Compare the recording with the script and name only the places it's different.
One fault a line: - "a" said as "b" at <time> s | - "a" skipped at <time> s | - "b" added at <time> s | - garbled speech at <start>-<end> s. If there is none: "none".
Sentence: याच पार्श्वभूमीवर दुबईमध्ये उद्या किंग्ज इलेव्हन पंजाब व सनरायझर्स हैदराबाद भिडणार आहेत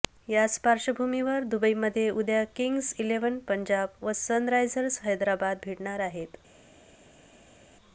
none